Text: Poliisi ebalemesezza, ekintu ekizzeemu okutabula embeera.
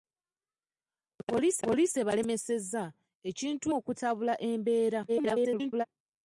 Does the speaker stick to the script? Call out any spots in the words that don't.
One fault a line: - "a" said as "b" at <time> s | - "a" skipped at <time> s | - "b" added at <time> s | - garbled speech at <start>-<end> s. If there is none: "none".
- "poliisi" added at 1.6 s
- "ekizzeemu" skipped at 3.7 s
- garbled speech at 5.1-5.9 s